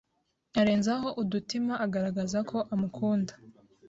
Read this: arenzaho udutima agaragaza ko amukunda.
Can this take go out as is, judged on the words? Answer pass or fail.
pass